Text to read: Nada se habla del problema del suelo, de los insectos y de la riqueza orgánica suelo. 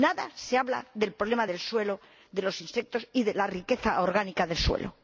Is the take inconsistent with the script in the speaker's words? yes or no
yes